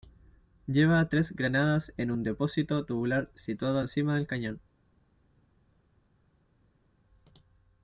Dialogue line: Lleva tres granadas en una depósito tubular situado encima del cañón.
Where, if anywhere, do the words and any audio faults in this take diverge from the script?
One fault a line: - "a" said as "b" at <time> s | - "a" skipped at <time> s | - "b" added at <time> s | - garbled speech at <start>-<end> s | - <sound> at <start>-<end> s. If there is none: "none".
- "una" said as "un" at 2.1 s